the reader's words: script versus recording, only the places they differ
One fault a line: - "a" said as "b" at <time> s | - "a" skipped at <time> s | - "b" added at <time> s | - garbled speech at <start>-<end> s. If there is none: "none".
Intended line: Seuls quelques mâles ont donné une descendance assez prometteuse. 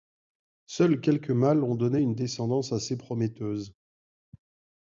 none